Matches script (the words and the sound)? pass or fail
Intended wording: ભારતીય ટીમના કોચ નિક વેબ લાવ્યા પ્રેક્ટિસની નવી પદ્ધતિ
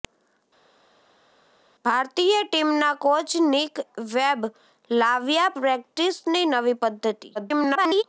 fail